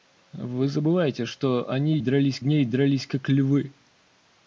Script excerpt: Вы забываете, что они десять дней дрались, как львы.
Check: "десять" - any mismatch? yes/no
yes